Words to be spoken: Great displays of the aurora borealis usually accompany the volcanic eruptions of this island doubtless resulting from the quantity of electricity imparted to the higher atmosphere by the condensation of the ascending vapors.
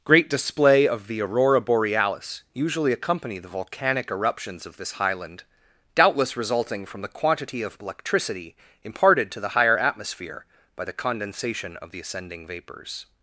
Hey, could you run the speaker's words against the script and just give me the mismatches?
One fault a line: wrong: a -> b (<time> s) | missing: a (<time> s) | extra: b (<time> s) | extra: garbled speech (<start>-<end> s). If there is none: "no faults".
wrong: displays -> display (0.3 s)
wrong: island -> highland (4.9 s)